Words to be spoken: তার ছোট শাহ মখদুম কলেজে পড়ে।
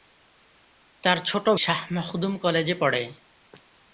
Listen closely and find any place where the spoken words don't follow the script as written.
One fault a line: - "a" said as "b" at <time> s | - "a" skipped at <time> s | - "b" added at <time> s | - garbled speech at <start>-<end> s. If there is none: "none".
none